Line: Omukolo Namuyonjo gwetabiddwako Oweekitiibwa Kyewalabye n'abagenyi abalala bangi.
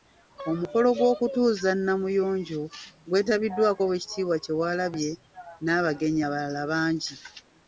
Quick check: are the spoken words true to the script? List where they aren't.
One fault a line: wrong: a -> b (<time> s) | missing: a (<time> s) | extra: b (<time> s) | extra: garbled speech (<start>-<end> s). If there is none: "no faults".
extra: gw'okutuuza (1.0 s)